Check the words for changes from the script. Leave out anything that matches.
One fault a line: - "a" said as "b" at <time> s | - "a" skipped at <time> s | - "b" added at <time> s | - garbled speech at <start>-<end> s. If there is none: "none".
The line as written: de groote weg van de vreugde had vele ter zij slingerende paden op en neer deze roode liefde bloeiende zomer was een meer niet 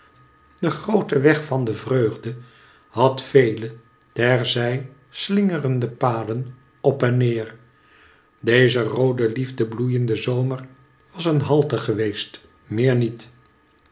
- "halte geweest" added at 11.4 s